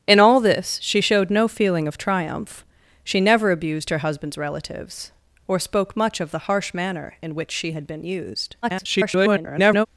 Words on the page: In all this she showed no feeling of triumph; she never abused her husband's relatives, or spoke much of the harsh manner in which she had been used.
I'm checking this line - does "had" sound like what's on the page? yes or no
yes